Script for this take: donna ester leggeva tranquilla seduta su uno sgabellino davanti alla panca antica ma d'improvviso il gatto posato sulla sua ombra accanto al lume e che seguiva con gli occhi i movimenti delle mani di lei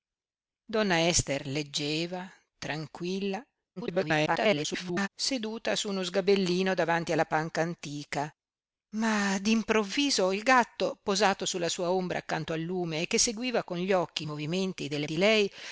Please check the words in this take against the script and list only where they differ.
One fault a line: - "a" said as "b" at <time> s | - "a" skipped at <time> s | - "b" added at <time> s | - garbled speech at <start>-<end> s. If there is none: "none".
- garbled speech at 3.8-5.1 s
- "mani" skipped at 15.1 s